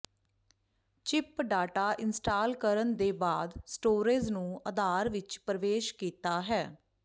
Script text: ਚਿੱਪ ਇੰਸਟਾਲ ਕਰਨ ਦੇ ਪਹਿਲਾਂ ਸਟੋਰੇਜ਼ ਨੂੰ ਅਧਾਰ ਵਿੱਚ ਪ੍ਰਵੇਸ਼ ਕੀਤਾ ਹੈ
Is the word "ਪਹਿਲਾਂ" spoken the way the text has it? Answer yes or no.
no